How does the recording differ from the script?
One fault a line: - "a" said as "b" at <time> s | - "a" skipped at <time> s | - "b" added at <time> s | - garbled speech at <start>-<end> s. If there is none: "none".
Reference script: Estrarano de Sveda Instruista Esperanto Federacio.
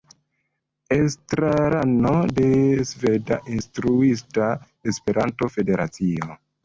none